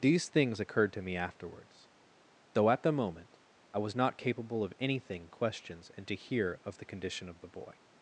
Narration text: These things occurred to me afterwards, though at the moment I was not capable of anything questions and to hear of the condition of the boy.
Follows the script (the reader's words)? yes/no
yes